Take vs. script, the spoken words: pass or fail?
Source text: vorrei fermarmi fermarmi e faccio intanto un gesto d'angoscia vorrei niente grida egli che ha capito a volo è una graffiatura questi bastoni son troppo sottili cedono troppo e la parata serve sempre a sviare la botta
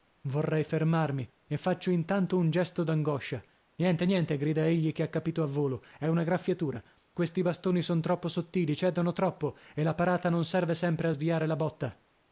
fail